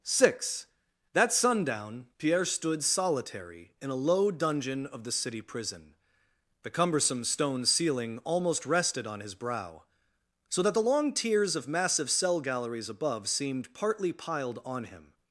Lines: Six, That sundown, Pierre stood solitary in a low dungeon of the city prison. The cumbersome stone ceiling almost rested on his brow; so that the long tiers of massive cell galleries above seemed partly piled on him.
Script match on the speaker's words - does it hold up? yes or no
yes